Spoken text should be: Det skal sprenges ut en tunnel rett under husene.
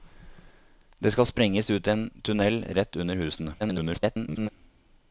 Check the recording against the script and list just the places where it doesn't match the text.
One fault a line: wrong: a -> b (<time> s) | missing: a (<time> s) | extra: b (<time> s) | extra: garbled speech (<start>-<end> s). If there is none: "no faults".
extra: garbled speech (3.6-4.5 s)